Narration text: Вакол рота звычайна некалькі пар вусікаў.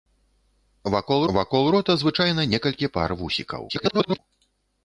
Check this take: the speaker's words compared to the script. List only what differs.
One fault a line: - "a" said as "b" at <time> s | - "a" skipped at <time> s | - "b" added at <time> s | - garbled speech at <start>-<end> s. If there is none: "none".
- "вакол" added at 1.4 s
- garbled speech at 3.7-4.2 s